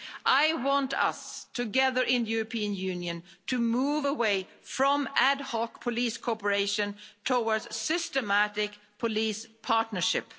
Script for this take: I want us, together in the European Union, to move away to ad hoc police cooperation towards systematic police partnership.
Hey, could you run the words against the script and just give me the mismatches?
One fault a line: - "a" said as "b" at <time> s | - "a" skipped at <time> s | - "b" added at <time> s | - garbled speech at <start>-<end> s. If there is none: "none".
- "to" said as "from" at 4.6 s